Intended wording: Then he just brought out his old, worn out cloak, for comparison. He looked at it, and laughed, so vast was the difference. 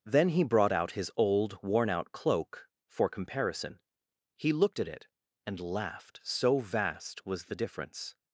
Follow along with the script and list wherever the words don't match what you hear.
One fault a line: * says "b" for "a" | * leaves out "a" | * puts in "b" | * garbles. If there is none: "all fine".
* leaves out "just"